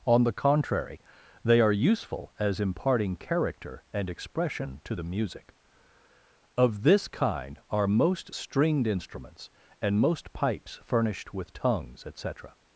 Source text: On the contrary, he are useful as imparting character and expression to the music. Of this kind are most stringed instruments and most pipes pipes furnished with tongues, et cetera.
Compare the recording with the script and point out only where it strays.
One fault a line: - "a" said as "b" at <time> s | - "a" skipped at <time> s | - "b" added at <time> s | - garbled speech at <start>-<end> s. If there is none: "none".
- "he" said as "they" at 1.4 s
- "pipes" skipped at 10.8 s